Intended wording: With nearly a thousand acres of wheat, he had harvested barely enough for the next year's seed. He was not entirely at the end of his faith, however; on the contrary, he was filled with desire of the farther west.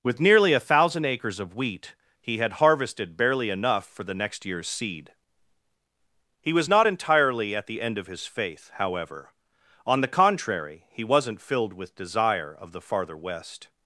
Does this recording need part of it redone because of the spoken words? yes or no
yes